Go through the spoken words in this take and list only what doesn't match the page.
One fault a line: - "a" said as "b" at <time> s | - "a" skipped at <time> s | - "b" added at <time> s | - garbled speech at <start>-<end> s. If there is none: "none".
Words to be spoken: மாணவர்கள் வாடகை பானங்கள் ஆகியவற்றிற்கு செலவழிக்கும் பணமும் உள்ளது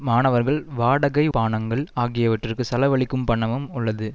none